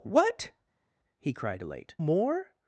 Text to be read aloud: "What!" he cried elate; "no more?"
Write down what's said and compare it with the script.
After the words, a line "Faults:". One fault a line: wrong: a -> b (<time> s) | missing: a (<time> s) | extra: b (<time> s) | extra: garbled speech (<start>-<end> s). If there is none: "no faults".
"What!" he cried elate; "more?"
Faults:
missing: no (1.9 s)